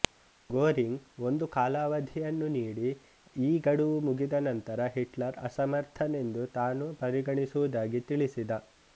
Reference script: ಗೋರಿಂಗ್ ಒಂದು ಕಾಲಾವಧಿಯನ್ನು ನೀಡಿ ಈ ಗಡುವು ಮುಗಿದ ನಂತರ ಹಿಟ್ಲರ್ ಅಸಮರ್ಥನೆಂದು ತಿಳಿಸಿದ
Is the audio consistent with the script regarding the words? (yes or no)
no